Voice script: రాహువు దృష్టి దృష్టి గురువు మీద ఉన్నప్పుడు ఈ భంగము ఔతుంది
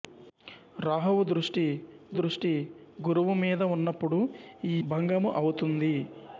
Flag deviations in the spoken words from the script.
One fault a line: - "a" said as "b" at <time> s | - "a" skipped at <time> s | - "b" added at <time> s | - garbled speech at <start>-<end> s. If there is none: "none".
none